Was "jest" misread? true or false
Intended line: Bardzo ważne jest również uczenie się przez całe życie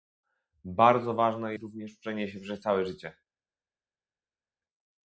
true